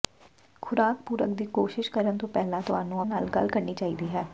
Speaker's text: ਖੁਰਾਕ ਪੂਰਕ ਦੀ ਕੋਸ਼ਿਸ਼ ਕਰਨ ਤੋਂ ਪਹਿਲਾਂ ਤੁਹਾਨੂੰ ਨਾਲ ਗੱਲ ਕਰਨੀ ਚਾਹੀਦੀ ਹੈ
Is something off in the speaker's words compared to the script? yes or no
no